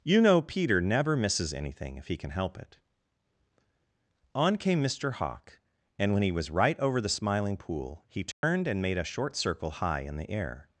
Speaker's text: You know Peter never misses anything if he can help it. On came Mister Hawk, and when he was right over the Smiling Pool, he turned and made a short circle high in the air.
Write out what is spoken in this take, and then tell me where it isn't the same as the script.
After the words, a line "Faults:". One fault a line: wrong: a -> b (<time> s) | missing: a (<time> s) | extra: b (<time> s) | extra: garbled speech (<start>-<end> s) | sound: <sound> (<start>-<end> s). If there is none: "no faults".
You know Peter never misses anything if he can help it. On came Mister Hawk, and when he was right over the Smiling Pool, he turned and made a short circle high in the air.
Faults:
sound: dropout (8.3-8.4 s)